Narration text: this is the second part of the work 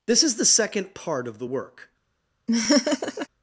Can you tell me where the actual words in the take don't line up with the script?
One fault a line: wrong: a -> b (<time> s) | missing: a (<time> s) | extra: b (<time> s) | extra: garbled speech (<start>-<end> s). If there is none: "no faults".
no faults